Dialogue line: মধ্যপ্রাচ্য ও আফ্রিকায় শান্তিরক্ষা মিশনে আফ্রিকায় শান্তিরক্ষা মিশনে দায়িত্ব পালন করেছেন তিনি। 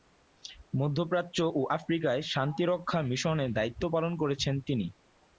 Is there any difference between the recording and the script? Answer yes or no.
yes